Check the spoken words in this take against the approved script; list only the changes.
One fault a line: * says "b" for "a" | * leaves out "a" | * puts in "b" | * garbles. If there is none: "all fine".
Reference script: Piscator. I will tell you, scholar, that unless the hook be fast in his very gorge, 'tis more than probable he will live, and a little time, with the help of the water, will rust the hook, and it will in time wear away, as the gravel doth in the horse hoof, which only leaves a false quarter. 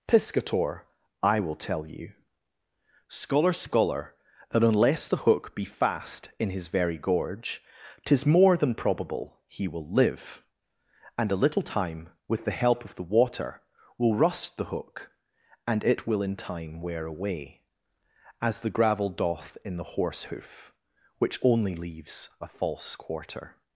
* puts in "scholar"